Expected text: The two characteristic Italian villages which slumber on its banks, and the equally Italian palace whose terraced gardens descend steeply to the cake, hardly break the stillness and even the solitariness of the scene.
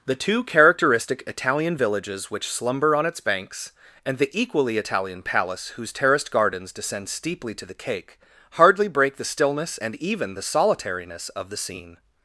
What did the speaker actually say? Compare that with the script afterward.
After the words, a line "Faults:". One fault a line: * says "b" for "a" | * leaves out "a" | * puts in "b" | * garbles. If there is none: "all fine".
The two characteristic Italian villages which slumber on its banks, and the equally Italian palace whose terraced gardens descend steeply to the cake, hardly break the stillness and even the solitariness of the scene.
Faults:
all fine